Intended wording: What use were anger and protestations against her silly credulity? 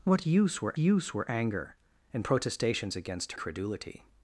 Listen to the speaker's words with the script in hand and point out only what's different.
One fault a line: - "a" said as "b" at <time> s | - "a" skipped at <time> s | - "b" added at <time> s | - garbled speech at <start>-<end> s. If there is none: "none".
- "use were" added at 0.8 s
- "her silly" skipped at 3.3 s